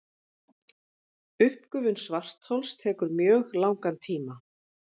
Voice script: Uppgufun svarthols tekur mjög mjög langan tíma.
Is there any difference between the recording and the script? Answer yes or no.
yes